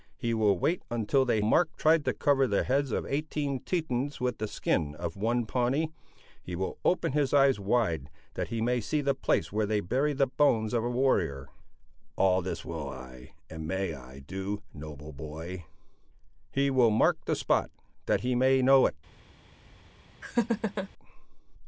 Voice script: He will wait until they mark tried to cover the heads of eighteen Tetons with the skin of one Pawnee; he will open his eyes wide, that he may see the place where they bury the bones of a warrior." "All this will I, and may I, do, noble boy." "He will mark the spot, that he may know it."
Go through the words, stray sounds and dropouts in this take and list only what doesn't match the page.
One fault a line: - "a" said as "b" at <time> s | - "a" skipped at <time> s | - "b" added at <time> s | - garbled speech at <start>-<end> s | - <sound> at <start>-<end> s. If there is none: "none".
- laugh at 20.2-20.9 s